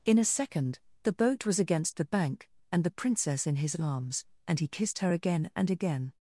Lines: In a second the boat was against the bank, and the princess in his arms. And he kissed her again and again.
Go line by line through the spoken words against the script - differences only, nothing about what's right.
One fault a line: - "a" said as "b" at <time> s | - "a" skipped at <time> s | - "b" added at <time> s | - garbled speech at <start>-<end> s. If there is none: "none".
none